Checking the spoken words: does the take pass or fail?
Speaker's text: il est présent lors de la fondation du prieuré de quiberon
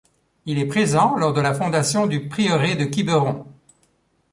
pass